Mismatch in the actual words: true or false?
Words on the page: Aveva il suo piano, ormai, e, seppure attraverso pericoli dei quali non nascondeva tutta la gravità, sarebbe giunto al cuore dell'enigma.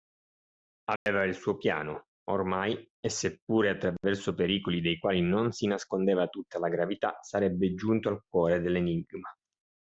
true